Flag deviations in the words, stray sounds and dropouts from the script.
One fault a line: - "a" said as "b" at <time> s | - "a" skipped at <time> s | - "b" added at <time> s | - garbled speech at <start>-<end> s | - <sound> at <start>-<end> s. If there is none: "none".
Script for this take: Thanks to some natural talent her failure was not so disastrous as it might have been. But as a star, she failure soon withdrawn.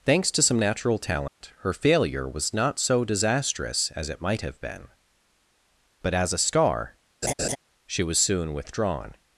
- dropout at 1.3-1.4 s
- laugh at 7.2-7.6 s
- "failure" said as "was" at 8.0 s